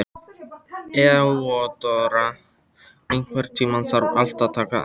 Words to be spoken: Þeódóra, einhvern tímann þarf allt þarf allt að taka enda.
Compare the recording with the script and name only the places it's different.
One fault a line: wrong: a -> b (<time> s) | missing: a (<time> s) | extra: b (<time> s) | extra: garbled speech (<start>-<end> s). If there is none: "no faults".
missing: þarf allt (4.5 s)